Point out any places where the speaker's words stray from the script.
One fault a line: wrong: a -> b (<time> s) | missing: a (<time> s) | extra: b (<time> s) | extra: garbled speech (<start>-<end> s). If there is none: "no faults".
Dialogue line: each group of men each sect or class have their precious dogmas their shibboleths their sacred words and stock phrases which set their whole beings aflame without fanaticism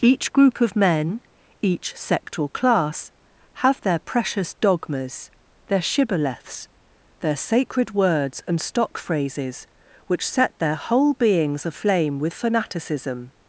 wrong: without -> with (12.2 s)